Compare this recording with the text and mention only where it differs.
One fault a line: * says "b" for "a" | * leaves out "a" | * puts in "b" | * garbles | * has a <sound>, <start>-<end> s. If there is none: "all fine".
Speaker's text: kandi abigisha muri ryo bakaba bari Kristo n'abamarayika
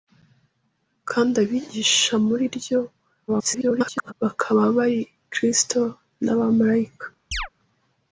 * garbles
* has a chirp, 7.3-7.5 s